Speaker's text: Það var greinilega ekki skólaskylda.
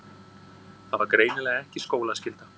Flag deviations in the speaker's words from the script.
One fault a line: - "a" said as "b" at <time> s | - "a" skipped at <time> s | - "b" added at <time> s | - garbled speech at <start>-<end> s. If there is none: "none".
none